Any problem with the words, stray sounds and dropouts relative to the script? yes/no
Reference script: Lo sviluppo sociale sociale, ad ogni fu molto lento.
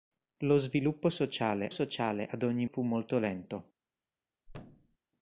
yes